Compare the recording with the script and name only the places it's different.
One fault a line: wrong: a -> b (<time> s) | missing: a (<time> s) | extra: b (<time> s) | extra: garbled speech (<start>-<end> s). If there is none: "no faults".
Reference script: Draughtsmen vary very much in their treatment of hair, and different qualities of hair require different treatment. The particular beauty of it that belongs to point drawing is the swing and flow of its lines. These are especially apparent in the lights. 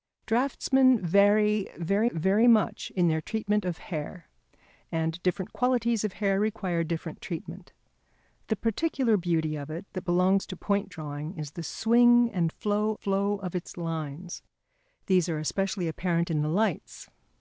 extra: very (2.1 s)
extra: flow (12.9 s)